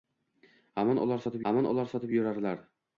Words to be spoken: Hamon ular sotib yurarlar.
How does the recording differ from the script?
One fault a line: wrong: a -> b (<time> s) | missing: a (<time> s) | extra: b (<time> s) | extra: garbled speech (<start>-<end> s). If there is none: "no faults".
extra: hamon ular sotib (1.5 s)